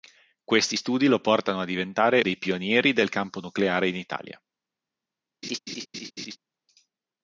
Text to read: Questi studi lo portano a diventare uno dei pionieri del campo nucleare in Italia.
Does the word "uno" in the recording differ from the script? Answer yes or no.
yes